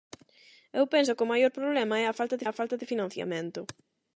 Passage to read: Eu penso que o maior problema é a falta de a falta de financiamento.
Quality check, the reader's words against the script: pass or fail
pass